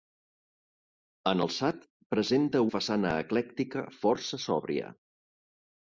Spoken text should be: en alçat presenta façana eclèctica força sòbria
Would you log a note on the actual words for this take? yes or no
no